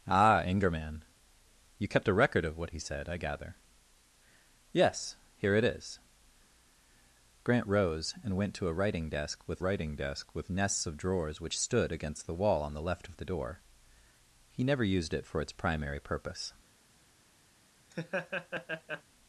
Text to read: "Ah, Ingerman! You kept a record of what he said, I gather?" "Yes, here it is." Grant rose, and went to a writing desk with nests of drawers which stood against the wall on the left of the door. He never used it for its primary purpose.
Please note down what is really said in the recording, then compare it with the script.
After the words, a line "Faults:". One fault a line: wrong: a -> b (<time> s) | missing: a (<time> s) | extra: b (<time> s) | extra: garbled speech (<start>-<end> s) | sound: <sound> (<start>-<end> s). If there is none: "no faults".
"Ah, Ingerman! You kept a record of what he said, I gather?" "Yes, here it is." Grant rose, and went to a writing desk with writing desk with nests of drawers which stood against the wall on the left of the door. He never used it for its primary purpose.
Faults:
extra: writing desk with (9.6 s)
sound: laugh (17.9-19.0 s)